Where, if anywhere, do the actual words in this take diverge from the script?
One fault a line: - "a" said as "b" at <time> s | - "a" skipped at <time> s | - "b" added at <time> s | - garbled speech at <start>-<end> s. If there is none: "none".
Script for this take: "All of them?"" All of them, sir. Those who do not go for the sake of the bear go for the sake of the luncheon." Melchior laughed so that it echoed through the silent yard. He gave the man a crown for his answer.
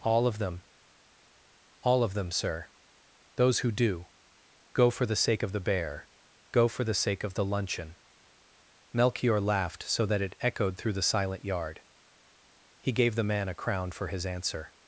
- "not" skipped at 4.1 s